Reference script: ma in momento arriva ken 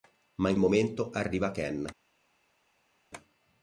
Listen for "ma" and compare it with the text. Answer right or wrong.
right